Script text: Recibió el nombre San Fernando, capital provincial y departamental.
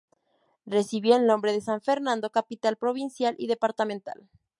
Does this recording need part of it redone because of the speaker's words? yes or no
yes